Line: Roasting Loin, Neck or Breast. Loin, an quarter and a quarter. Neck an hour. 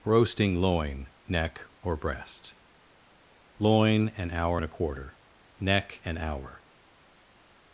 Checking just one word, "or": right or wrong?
right